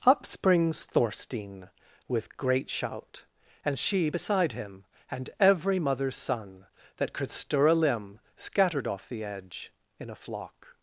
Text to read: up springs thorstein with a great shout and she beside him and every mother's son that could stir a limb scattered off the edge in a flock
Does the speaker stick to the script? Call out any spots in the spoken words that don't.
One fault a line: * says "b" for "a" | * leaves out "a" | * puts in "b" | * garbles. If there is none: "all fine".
* leaves out "a"